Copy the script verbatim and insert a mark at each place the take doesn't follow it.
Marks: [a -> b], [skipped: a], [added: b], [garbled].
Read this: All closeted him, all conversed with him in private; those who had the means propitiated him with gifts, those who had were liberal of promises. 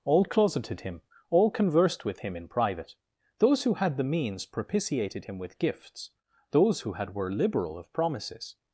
All closeted him, all conversed with him in private; those who had the means propitiated him with gifts, those who had were liberal of promises.